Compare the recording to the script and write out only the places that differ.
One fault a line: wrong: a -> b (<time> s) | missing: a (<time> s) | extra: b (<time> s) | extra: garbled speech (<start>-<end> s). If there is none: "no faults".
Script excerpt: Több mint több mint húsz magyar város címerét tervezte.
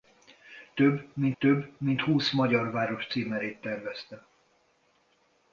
no faults